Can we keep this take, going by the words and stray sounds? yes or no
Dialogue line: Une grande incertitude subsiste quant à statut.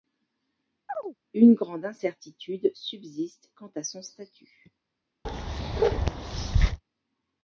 no